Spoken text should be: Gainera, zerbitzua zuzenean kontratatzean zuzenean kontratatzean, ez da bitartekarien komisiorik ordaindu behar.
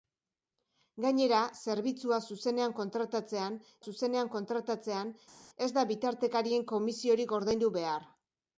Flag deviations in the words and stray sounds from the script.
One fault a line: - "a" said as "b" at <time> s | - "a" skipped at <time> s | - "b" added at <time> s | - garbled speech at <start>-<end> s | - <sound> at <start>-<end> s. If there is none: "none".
none